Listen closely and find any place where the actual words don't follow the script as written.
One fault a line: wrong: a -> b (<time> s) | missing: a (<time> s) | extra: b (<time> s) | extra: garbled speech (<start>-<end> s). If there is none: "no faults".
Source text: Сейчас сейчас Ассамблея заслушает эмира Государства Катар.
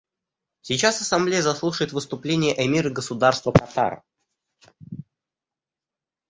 missing: сейчас (1.0 s)
extra: выступление (1.9 s)